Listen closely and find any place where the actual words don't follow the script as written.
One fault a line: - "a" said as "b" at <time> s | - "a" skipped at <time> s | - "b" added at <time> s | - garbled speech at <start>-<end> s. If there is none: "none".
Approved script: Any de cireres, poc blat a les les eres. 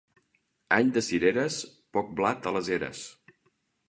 - "les" skipped at 2.7 s